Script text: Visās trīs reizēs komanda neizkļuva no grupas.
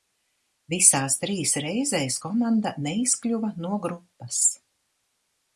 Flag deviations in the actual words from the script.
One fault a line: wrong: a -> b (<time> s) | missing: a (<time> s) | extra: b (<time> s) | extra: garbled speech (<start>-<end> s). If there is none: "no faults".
no faults